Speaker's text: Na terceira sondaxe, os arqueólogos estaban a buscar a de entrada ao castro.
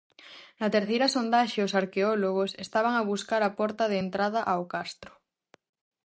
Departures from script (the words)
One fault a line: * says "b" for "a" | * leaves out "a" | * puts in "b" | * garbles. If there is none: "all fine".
* puts in "porta"